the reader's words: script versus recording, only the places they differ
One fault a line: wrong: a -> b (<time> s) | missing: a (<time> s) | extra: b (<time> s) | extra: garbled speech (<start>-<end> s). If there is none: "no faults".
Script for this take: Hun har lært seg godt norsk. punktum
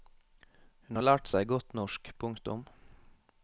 no faults